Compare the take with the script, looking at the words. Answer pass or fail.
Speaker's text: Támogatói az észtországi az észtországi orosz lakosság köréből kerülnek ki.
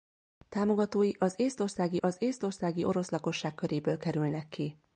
pass